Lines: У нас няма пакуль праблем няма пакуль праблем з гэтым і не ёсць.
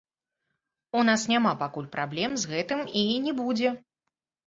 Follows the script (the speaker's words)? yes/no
no